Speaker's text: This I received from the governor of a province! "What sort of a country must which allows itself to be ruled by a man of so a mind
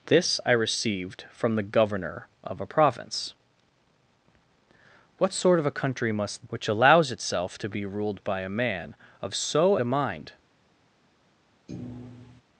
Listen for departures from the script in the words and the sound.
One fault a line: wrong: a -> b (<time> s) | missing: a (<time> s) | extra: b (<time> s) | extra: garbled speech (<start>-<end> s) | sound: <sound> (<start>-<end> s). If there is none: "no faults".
sound: thud (11.7-12.4 s)